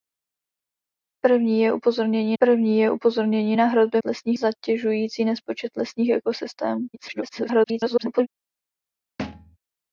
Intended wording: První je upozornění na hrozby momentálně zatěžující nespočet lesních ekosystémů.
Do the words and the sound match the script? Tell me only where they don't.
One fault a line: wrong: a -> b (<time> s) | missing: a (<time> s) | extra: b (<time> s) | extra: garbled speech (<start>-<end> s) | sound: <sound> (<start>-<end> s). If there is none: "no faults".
extra: první je upozornění (2.4 s)
wrong: momentálně -> lesních (4.0 s)
extra: garbled speech (6.9-8.3 s)
sound: thud (9.2-9.6 s)